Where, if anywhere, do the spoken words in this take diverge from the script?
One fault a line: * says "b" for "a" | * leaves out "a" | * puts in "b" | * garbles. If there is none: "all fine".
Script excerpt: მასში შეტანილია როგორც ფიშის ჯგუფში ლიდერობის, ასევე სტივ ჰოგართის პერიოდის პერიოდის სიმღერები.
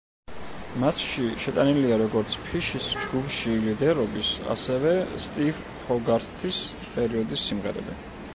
* leaves out "პერიოდის"